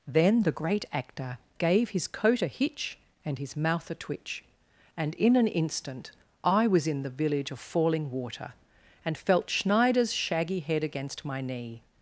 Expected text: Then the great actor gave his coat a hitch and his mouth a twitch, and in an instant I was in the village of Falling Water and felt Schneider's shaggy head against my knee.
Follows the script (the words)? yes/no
yes